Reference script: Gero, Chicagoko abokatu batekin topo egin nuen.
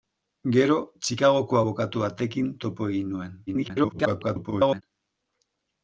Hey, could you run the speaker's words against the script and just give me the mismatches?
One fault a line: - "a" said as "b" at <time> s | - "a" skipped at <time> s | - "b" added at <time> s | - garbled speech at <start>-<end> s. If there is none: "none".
- garbled speech at 3.5-4.8 s